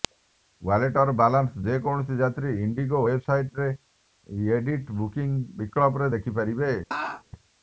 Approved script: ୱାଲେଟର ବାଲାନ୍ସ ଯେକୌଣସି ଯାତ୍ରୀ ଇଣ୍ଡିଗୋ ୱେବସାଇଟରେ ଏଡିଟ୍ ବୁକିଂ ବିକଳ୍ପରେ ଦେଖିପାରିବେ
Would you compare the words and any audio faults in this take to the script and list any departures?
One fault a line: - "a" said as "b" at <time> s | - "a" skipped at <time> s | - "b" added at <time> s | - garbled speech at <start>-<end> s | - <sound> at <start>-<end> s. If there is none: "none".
- laugh at 6.9-7.2 s